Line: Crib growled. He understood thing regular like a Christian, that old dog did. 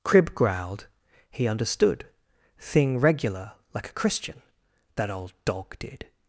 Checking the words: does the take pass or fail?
pass